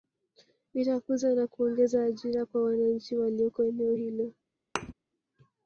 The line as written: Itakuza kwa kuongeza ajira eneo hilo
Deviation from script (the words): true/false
true